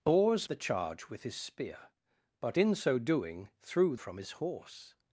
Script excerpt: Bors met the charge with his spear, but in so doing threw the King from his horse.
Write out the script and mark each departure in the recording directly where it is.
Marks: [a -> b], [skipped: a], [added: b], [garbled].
Bors [skipped: met] the charge with his spear, but in so doing threw [skipped: the King] from his horse.